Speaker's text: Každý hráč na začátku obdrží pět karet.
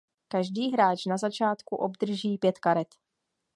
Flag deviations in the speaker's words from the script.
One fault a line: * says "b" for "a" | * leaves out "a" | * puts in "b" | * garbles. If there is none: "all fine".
all fine